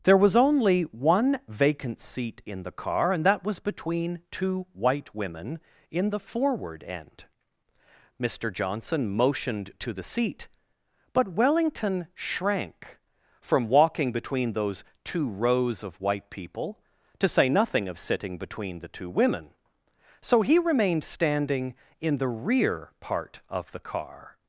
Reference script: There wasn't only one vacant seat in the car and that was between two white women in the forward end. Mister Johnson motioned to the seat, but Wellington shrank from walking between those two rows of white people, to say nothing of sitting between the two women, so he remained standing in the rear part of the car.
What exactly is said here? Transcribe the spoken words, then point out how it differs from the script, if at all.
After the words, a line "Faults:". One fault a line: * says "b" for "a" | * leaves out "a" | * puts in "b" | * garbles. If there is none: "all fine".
There was only one vacant seat in the car and that was between two white women in the forward end. Mister Johnson motioned to the seat, but Wellington shrank from walking between those two rows of white people, to say nothing of sitting between the two women, so he remained standing in the rear part of the car.
Faults:
* says "was" for "wasn't"